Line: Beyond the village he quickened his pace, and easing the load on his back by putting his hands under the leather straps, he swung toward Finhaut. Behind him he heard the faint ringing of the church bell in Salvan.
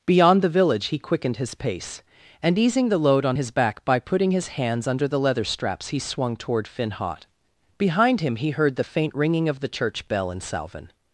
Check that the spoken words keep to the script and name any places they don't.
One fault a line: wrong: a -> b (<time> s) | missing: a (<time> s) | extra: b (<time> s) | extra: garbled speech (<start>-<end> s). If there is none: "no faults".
no faults